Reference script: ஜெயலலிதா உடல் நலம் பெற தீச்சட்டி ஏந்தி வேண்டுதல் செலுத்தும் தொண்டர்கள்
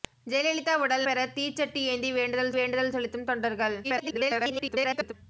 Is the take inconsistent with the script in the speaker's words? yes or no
yes